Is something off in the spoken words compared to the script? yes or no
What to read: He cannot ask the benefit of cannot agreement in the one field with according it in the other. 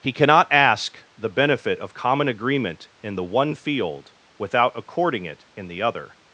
yes